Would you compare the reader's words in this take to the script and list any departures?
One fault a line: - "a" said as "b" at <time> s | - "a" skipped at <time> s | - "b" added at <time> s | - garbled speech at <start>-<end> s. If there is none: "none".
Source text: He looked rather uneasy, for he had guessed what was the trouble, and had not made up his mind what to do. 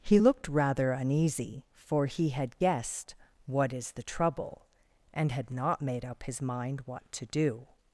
- "was" said as "is" at 3.7 s